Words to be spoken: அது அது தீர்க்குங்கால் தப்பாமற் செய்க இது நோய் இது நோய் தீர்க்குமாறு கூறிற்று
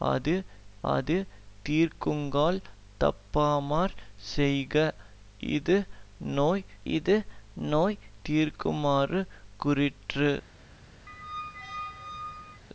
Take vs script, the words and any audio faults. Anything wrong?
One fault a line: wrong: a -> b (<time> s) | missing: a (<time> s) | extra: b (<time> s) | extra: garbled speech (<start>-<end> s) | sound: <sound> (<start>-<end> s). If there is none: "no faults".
sound: squeak (11.1-12.6 s)